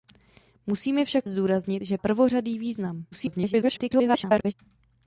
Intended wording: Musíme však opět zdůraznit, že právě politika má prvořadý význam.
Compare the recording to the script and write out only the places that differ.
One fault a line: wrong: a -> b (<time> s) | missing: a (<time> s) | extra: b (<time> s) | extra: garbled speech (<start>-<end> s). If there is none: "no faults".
missing: opět (1.3 s)
missing: právě politika má (2.0 s)
extra: garbled speech (3.1-4.5 s)